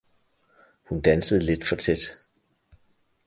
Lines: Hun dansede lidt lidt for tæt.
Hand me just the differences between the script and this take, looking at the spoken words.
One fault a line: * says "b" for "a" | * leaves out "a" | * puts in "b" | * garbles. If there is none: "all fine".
* leaves out "lidt"